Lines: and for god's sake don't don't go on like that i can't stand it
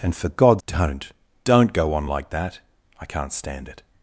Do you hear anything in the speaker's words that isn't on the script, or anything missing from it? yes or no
yes